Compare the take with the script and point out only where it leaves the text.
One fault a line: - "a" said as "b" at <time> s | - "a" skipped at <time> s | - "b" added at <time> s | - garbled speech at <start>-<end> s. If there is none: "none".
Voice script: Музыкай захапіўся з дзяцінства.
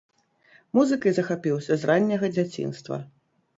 - "ранняга" added at 1.9 s